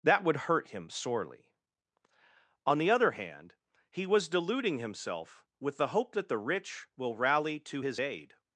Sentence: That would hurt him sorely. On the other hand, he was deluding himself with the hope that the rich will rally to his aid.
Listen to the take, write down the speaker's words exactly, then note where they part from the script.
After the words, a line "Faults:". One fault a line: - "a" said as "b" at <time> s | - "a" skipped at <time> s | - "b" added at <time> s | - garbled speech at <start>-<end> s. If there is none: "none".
That would hurt him sorely. On the other hand, he was deluding himself with the hope that the rich will rally to his aid.
Faults:
none